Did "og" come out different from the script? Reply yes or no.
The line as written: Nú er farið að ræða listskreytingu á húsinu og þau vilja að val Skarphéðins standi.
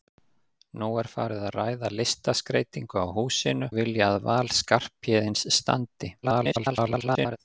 yes